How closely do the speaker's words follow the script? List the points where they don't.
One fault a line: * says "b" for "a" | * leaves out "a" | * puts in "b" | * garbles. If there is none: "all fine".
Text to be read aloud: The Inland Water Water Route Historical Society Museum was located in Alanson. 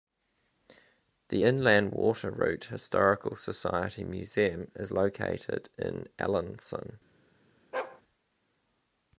* leaves out "Water"
* says "is" for "was"